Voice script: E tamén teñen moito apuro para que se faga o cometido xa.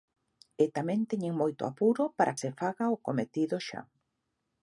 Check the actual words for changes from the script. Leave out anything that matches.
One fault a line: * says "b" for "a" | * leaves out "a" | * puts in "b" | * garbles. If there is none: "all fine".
* leaves out "que"